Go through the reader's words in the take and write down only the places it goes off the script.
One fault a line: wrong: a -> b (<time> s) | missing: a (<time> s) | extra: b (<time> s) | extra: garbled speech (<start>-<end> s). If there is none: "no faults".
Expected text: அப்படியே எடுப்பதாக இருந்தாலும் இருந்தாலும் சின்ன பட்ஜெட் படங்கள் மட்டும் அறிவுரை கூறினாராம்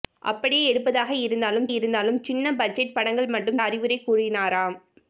no faults